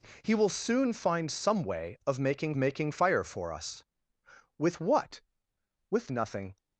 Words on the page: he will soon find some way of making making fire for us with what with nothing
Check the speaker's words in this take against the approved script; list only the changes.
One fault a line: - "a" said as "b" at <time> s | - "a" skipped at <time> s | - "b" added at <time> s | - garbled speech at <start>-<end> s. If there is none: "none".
none